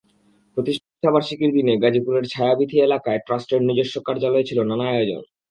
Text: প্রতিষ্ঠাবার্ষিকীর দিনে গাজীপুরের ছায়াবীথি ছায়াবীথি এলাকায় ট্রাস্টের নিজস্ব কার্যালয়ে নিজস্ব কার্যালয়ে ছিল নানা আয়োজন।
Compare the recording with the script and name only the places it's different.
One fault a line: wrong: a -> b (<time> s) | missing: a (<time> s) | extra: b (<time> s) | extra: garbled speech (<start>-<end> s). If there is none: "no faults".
missing: ছায়াবীথি (2.8 s)
missing: নিজস্ব কার্যালয়ে (4.5 s)